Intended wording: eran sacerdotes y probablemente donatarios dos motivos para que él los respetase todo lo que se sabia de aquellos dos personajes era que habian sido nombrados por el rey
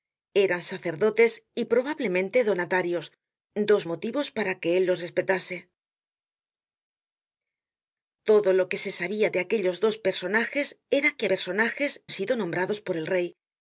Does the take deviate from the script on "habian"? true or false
true